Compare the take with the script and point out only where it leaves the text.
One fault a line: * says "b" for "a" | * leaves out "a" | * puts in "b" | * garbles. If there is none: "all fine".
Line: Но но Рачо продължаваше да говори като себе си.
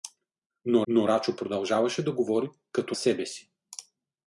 all fine